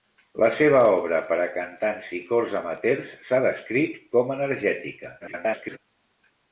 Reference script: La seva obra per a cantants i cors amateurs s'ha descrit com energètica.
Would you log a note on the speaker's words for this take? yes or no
yes